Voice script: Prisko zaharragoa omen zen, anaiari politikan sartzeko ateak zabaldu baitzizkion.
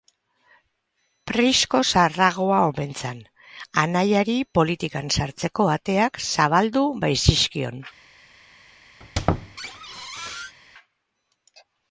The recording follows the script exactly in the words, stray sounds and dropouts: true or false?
false